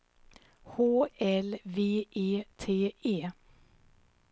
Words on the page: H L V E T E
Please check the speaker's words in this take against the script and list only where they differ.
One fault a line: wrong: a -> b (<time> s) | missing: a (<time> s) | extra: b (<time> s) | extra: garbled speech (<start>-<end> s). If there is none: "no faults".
no faults